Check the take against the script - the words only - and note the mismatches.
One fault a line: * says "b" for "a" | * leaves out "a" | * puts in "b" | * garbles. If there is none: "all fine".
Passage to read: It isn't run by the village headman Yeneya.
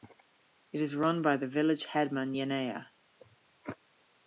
* says "is" for "isn't"